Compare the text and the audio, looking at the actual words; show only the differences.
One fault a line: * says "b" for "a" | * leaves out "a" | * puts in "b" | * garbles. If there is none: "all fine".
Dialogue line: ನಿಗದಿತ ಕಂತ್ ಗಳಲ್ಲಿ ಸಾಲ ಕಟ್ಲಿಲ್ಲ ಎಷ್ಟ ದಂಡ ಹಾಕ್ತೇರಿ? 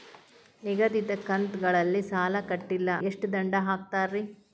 all fine